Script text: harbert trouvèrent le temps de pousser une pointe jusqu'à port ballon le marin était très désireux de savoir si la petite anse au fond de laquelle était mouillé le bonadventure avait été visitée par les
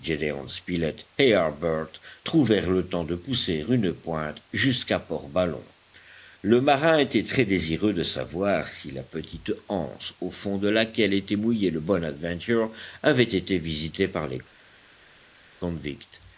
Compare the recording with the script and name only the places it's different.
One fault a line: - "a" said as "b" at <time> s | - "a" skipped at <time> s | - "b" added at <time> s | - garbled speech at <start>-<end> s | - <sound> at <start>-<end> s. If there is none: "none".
none